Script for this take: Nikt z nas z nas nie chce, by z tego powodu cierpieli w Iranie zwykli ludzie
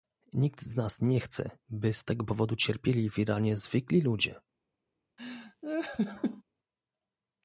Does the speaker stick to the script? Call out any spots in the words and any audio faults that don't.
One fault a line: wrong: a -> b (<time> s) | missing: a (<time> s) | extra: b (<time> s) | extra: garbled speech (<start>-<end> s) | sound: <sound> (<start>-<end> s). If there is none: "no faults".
missing: z nas (1.0 s)
sound: laugh (5.2-6.4 s)